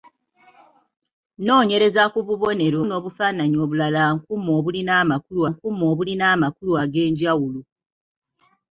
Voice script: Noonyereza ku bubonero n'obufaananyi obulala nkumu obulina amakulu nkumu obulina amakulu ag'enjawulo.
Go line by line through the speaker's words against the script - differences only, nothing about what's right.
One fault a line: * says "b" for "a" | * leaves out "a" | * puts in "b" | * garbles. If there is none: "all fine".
all fine